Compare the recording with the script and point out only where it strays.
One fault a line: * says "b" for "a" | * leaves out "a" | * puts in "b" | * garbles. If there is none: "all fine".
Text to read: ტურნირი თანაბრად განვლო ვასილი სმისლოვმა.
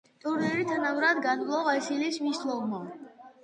all fine